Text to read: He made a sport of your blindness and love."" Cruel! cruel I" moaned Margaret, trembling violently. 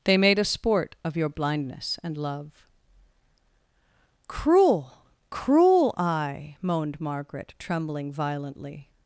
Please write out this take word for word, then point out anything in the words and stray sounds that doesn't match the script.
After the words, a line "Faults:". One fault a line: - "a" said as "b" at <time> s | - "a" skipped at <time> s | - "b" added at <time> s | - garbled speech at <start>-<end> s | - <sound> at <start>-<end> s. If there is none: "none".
They made a sport of your blindness and love."" Cruel! cruel I" moaned Margaret, trembling violently.
Faults:
- "He" said as "They" at 0.0 s